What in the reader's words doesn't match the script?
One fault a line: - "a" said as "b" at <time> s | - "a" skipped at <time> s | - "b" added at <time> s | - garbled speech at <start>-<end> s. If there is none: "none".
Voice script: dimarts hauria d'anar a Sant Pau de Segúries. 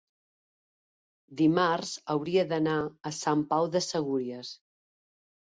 none